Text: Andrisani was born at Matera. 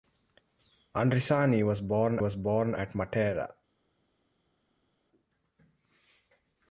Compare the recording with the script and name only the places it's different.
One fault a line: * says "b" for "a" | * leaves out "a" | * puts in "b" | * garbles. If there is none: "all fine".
* puts in "was born"